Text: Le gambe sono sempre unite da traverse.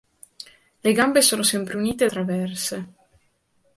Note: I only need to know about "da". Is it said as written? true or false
false